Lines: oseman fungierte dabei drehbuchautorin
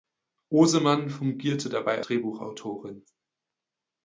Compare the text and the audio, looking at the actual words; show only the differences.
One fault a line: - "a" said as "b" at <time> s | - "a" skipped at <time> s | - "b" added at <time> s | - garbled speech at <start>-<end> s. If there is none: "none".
none